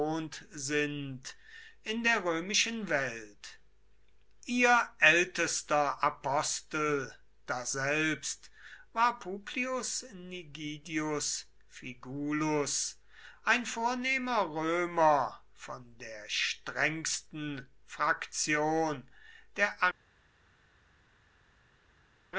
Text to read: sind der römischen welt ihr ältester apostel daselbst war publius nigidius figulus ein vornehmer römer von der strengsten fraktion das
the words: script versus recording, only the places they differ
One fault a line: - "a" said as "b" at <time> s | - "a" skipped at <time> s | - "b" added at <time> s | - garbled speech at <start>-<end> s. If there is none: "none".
- "in" added at 1.8 s
- "das" said as "der" at 19.6 s